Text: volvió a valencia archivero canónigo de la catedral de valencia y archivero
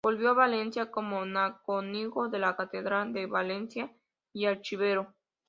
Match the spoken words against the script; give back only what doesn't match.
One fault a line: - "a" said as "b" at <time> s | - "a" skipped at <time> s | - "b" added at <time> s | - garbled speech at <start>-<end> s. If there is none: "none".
- "archivero" said as "como" at 0.9 s